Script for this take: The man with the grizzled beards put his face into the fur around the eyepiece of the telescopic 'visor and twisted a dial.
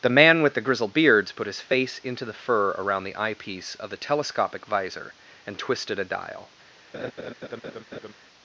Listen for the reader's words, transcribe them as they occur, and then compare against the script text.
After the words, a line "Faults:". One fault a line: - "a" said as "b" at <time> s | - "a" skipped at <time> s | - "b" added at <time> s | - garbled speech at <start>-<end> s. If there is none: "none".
The man with the grizzled beards put his face into the fur around the eyepiece of the telescopic 'visor and twisted a dial.
Faults:
none